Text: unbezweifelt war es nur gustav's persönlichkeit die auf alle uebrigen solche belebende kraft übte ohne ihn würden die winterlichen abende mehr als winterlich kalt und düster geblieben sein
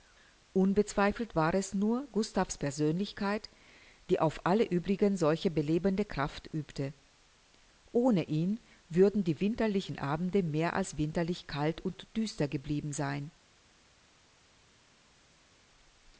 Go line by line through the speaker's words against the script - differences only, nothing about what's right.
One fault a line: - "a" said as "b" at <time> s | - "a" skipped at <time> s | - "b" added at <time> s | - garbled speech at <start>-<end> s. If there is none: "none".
none